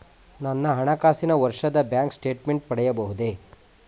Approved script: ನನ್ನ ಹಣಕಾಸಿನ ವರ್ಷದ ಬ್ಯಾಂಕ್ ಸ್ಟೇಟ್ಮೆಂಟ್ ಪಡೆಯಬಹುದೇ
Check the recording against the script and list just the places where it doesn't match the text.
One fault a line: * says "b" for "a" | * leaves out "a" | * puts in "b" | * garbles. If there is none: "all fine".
all fine